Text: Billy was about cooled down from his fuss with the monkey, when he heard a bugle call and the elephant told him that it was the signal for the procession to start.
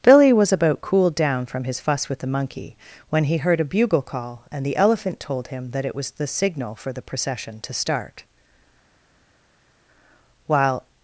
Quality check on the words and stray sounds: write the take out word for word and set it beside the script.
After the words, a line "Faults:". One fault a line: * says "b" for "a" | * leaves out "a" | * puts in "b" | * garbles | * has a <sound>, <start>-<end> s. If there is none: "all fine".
Billy was about cooled down from his fuss with the monkey, when he heard a bugle call and the elephant told him that it was the signal for the procession to start. While
Faults:
* puts in "While"